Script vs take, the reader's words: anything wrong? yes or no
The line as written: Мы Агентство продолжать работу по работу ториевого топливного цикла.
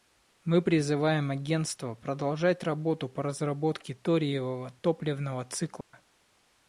yes